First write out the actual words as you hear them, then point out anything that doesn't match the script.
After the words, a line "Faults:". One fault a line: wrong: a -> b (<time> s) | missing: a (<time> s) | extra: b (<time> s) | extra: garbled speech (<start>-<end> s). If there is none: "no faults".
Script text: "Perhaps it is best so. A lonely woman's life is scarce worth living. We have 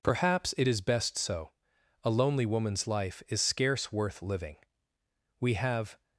"Perhaps it is best so. A lonely woman's life is scarce worth living. We have
Faults:
no faults